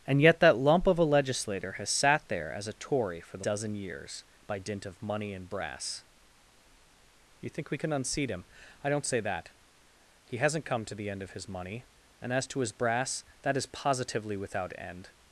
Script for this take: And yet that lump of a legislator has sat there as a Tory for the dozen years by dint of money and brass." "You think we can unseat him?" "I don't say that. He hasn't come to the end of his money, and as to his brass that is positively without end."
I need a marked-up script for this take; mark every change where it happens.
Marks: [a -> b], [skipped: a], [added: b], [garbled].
And yet that lump of a legislator has sat there as a Tory for the dozen years by dint of money and brass." "You think we can unseat him?" "I don't say that. He hasn't come to the end of his money, and as to his brass that is positively without end."